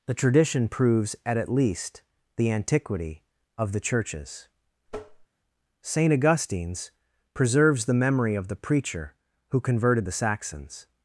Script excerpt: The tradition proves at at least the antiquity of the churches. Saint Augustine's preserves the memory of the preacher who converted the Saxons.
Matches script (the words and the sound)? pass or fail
fail